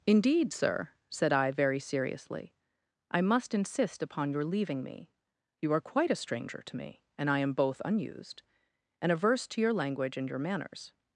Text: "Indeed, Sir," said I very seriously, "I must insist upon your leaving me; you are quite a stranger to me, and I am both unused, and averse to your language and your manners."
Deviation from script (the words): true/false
false